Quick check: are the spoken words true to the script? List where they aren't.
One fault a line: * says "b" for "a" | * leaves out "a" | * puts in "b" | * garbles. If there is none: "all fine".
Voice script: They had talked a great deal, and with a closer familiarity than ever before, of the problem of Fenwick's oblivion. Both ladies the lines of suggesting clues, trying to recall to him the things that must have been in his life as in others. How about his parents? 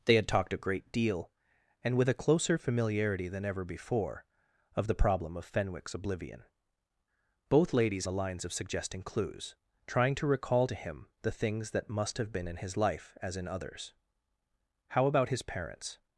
all fine